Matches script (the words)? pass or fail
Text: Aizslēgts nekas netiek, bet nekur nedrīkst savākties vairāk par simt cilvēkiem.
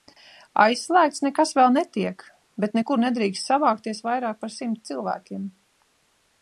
fail